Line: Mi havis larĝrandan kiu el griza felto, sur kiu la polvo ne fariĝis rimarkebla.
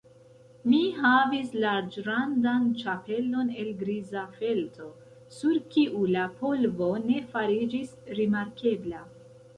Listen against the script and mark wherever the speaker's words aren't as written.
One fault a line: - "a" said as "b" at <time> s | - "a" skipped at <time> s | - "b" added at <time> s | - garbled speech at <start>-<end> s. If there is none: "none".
- "kiu" said as "ĉapelon" at 2.8 s